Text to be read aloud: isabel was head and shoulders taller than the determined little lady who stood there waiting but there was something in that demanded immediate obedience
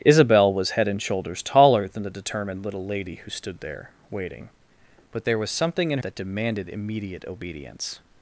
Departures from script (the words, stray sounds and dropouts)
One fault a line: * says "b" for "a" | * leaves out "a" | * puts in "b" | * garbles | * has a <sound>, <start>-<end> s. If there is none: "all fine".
all fine